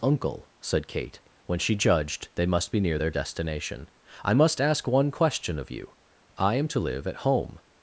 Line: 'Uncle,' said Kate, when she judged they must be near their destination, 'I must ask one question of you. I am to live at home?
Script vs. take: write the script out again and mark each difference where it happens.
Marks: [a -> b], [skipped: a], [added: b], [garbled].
'Uncle,' said Kate, when she judged they must be near their destination, 'I must ask one question of you. I am to live at home?